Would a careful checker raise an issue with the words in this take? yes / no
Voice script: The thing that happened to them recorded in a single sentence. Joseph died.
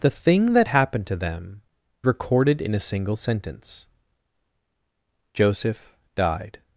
no